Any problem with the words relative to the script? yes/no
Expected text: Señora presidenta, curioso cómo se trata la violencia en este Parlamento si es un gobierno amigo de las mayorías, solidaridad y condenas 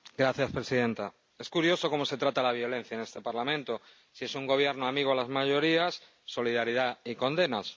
yes